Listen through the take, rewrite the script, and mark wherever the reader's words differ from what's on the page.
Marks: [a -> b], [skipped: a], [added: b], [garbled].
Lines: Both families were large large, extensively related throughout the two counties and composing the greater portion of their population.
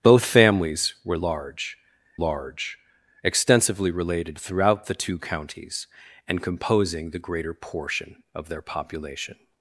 Both families were large large, extensively related throughout the two counties and composing the greater portion of their population.